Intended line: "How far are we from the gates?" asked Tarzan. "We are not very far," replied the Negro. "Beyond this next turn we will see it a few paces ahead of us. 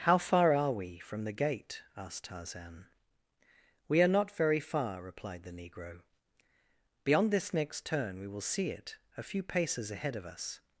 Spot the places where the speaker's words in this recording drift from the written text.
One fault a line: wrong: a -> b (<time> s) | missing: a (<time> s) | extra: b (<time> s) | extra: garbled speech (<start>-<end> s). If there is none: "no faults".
wrong: gates -> gate (1.3 s)